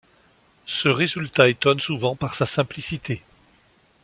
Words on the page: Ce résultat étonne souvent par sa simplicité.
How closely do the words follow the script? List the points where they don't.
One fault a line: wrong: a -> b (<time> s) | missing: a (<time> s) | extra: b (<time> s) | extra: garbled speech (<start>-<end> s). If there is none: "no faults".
no faults